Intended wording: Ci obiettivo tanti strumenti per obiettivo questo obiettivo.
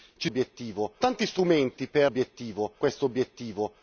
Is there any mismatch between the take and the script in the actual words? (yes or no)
no